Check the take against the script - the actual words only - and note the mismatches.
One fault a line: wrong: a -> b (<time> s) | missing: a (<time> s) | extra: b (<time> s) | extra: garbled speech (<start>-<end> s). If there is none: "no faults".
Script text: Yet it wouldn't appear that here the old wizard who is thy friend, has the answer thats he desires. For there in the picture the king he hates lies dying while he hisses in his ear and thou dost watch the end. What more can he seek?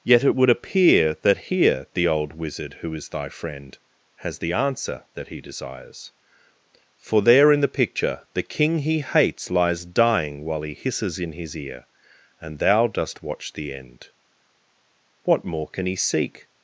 wrong: wouldn't -> would (0.3 s)
wrong: thats -> that (5.1 s)